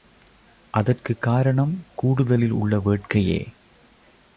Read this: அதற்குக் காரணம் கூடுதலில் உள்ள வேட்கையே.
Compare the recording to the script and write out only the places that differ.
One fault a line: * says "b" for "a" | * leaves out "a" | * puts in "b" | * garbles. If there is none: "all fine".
all fine